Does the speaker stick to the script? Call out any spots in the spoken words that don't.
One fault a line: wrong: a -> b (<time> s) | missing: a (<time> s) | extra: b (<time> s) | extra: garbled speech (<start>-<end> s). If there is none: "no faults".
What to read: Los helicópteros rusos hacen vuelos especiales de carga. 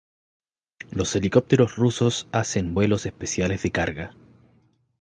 no faults